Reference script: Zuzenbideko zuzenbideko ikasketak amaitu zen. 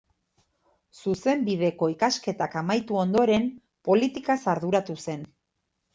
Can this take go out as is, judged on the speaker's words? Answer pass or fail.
fail